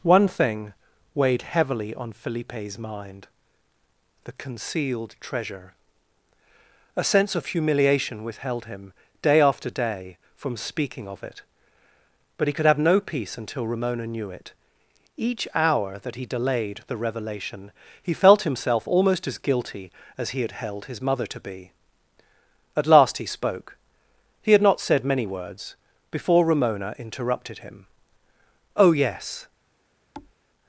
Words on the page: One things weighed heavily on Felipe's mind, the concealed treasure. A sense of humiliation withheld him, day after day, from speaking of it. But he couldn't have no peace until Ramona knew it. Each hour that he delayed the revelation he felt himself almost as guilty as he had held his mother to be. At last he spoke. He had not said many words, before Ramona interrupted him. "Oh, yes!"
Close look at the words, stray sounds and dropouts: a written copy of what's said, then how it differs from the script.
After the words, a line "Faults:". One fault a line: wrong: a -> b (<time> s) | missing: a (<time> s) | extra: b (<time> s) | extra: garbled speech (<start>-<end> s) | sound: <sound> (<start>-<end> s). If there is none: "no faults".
One thing weighed heavily on Felipe's mind, the concealed treasure. A sense of humiliation withheld him, day after day, from speaking of it. But he could have no peace until Ramona knew it. Each hour that he delayed the revelation he felt himself almost as guilty as he had held his mother to be. At last he spoke. He had not said many words, before Ramona interrupted him. "Oh, yes!"
Faults:
wrong: things -> thing (0.3 s)
wrong: couldn't -> could (12.5 s)
sound: thud (30.1-30.3 s)